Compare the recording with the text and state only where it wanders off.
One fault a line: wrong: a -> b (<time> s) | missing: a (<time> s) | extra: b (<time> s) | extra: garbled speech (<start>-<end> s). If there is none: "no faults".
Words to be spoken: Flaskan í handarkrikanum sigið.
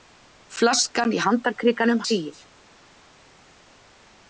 no faults